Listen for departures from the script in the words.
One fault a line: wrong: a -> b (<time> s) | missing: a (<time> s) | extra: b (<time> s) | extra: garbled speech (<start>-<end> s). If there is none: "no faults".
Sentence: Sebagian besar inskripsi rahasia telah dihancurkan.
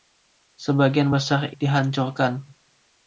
missing: inskripsi rahasia telah (1.5 s)